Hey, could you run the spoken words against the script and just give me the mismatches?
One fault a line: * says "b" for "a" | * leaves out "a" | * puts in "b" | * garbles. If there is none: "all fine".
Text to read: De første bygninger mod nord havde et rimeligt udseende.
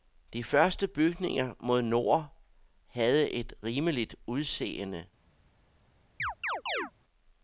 all fine